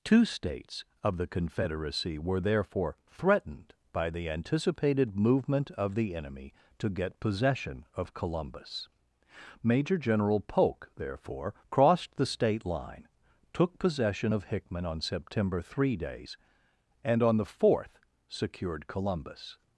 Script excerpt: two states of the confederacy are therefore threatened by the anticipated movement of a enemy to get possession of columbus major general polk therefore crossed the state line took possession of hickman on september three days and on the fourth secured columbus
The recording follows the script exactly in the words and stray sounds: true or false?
false